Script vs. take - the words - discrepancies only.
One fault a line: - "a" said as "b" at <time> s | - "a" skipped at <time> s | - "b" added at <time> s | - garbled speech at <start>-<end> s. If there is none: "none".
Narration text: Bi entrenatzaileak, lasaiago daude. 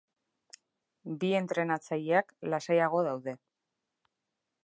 none